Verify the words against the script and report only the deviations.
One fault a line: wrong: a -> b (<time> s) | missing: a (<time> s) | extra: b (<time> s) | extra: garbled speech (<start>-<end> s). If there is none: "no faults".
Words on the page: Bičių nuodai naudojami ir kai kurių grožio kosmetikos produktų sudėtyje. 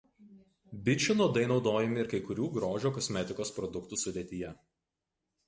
no faults